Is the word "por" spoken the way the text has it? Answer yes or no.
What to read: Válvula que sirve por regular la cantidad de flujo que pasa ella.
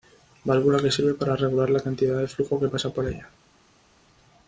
no